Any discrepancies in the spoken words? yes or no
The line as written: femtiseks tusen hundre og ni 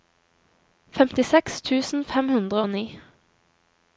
yes